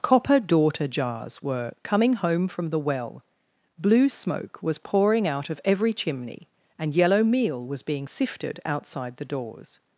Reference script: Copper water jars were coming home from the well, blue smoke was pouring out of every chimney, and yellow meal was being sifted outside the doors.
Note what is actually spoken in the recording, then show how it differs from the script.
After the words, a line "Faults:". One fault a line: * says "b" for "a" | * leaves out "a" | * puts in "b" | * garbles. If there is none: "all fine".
Copper daughter jars were coming home from the well, blue smoke was pouring out of every chimney, and yellow meal was being sifted outside the doors.
Faults:
* says "daughter" for "water"